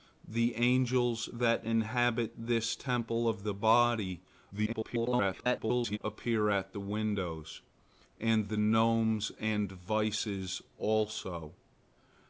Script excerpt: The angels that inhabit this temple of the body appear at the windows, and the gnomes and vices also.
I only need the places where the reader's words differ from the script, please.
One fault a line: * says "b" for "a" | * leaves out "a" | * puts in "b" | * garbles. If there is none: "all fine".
* garbles